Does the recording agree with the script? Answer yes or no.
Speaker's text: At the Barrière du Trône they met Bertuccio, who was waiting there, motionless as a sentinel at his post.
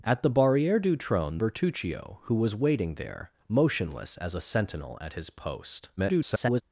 no